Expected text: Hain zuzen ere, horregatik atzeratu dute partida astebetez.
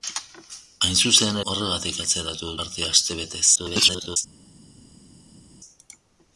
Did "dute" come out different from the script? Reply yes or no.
yes